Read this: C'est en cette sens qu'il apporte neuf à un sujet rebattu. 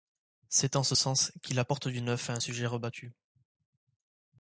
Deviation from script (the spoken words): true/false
true